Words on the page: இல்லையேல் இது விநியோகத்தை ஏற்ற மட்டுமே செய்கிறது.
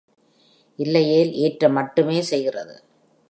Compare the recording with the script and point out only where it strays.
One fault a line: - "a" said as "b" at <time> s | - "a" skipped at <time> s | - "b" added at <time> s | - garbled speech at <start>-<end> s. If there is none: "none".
- "இது விநியோகத்தை" skipped at 1.3 s